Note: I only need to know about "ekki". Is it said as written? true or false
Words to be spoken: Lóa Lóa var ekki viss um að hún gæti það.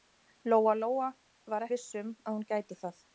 false